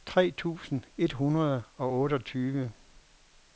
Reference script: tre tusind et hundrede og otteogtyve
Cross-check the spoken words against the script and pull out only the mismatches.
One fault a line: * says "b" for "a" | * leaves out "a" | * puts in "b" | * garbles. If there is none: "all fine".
all fine